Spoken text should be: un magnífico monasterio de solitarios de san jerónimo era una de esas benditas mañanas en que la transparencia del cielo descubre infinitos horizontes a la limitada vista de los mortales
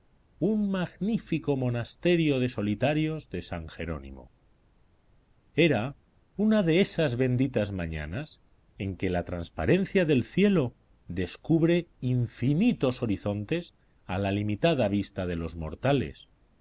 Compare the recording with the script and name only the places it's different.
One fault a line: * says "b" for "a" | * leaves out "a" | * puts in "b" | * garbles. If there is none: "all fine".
all fine